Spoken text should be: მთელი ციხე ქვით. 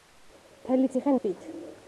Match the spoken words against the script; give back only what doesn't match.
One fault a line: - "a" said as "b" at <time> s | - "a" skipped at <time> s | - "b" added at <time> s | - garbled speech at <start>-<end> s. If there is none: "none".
none